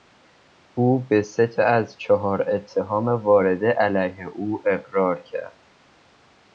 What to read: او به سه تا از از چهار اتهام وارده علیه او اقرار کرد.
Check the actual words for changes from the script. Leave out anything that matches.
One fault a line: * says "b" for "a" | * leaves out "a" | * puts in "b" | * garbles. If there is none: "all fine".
* leaves out "از"